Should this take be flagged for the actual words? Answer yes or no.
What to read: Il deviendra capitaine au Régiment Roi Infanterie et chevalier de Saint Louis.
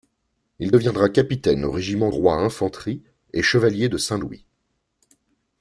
no